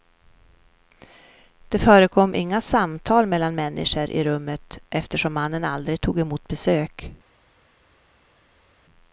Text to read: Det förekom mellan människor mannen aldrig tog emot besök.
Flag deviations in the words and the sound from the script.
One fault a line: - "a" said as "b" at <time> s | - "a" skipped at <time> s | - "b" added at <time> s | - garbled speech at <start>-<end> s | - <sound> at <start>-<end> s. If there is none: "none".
- "inga samtal" added at 2.4 s
- "i rummet eftersom" added at 4.1 s